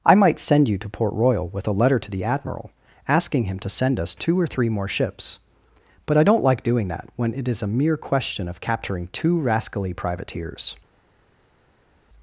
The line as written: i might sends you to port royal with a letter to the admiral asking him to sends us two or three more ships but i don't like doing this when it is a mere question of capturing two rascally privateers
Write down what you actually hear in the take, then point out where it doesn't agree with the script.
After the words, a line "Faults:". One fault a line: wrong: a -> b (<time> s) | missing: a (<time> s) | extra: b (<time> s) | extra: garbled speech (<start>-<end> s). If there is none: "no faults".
i might send you to port royal with a letter to the admiral asking him to send us two or three more ships but i don't like doing that when it is a mere question of capturing two rascally privateers
Faults:
wrong: sends -> send (0.4 s)
wrong: sends -> send (3.7 s)
wrong: this -> that (6.9 s)